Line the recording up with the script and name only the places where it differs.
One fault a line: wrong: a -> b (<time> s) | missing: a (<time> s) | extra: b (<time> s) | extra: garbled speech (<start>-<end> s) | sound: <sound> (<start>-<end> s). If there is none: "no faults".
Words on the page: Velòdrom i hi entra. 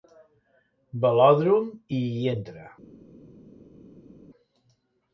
no faults